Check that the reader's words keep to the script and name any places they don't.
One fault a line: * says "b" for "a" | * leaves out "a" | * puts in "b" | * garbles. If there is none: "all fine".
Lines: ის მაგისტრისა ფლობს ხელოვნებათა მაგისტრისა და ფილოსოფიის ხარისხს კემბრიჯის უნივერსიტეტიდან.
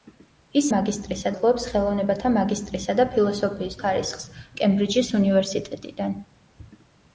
all fine